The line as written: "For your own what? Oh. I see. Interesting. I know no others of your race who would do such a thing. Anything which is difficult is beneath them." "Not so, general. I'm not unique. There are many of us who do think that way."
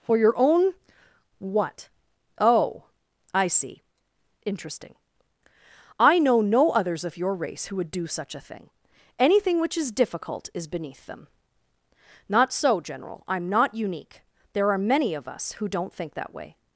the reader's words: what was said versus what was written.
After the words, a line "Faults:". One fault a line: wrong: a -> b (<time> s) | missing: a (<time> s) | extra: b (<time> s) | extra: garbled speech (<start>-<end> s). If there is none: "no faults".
"For your own what? Oh. I see. Interesting. I know no others of your race who would do such a thing. Anything which is difficult is beneath them." "Not so, general. I'm not unique. There are many of us who don't think that way."
Faults:
wrong: do -> don't (15.7 s)